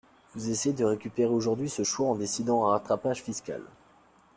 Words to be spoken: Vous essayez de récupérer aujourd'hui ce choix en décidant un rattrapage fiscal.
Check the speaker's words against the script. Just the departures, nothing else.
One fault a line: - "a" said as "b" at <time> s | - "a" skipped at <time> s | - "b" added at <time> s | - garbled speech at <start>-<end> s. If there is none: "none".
none